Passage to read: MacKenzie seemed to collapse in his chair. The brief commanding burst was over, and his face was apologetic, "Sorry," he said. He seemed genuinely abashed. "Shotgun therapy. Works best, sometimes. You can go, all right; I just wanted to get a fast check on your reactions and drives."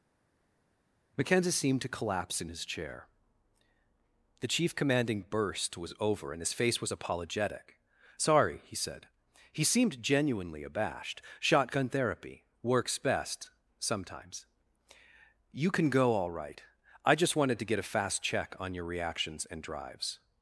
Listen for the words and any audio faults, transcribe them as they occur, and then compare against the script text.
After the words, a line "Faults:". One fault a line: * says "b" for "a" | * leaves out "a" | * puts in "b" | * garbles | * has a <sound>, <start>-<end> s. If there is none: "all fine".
MacKenzie seemed to collapse in his chair. The chief commanding burst was over, and his face was apologetic, "Sorry," he said. He seemed genuinely abashed. "Shotgun therapy. Works best, sometimes. You can go, all right; I just wanted to get a fast check on your reactions and drives."
Faults:
* says "chief" for "brief"